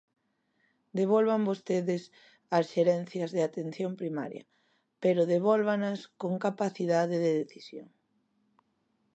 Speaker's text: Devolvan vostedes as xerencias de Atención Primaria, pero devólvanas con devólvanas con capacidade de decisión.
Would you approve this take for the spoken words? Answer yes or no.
no